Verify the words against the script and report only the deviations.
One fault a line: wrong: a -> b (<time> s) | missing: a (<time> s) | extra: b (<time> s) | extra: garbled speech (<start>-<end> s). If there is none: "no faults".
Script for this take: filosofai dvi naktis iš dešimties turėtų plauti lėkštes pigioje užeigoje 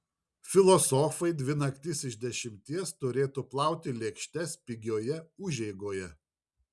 no faults